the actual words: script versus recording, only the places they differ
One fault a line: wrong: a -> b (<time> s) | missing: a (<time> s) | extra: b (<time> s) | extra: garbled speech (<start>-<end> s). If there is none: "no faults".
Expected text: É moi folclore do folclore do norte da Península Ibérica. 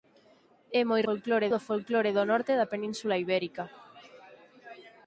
no faults